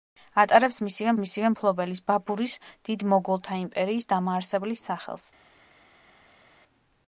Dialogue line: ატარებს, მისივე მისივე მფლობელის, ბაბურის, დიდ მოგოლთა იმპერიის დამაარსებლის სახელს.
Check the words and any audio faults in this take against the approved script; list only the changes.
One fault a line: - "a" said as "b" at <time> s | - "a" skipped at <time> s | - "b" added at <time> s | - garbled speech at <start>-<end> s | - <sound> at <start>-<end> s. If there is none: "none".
none